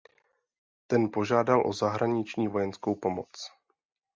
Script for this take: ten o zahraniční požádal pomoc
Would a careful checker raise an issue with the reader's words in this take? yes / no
yes